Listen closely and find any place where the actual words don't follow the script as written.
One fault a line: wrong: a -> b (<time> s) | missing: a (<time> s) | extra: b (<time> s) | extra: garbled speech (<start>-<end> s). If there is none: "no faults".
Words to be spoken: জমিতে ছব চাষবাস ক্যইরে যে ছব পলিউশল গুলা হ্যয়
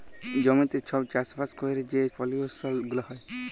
missing: ছব (2.0 s)